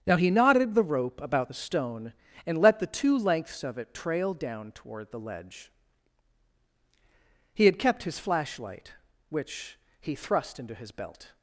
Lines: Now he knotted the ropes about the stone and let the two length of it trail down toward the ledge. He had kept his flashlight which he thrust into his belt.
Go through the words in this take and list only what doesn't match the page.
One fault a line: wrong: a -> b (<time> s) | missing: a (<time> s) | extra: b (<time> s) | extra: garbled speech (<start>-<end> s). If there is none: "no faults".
wrong: ropes -> rope (0.8 s)
wrong: length -> lengths (3.2 s)